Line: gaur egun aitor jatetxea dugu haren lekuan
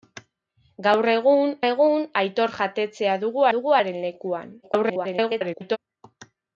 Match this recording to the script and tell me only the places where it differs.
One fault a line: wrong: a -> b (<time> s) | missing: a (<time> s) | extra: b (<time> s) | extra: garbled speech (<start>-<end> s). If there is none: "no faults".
extra: egun (1.7 s)
extra: dugu (3.5 s)
extra: garbled speech (4.6-5.8 s)